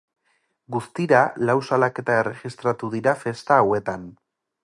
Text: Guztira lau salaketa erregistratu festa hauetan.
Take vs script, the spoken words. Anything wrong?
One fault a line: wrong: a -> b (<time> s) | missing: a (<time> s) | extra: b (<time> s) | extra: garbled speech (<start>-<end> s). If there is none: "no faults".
extra: dira (3.0 s)